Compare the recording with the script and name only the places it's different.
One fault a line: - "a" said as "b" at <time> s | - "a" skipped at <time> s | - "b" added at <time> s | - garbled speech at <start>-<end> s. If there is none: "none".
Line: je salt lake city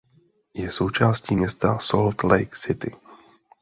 - "součástí města" added at 0.7 s